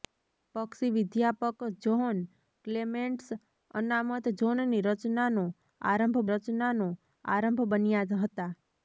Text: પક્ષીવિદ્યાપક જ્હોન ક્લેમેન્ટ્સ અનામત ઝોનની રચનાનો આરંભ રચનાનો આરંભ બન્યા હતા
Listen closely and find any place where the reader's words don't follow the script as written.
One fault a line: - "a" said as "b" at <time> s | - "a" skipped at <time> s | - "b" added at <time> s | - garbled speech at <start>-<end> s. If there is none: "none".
none